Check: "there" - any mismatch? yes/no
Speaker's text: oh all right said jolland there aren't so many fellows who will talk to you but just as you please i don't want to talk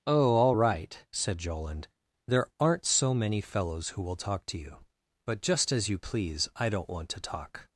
no